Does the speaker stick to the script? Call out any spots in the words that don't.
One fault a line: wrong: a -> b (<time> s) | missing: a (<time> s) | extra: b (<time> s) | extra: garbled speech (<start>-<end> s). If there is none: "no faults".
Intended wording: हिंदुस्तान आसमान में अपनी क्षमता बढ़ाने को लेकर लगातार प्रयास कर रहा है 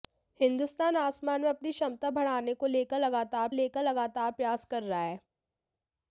extra: लेकर लगातार (3.5 s)